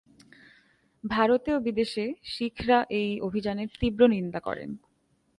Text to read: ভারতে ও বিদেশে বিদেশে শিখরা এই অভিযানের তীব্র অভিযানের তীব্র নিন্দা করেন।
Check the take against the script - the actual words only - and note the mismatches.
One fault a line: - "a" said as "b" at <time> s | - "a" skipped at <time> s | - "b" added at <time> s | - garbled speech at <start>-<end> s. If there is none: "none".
- "বিদেশে" skipped at 2.0 s
- "অভিযানের তীব্র" skipped at 4.0 s